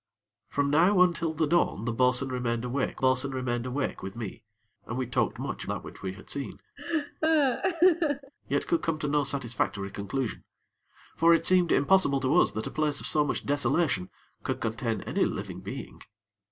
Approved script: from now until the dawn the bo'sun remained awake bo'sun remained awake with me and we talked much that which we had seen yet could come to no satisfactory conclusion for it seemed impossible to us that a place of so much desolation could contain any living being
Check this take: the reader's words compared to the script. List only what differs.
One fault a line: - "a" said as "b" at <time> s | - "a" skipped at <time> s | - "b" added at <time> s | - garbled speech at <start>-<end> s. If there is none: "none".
none